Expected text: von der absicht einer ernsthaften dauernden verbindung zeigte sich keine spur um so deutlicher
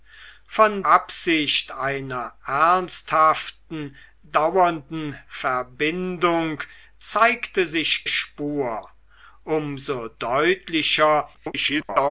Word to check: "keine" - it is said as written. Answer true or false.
false